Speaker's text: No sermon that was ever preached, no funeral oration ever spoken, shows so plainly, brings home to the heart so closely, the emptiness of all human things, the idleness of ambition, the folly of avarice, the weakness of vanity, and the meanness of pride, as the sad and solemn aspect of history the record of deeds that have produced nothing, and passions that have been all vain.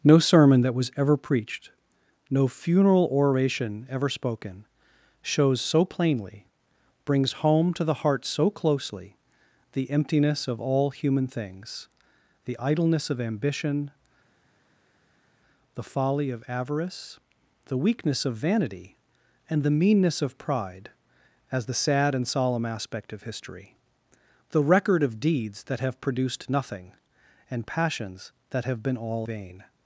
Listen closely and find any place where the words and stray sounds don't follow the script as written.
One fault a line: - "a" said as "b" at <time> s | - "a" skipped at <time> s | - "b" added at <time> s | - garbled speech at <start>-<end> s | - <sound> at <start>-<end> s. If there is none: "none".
none